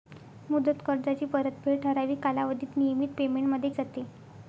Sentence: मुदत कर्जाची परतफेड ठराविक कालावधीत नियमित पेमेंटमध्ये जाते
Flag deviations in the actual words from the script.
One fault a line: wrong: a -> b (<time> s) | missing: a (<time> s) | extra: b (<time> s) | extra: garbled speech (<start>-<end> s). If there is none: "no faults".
no faults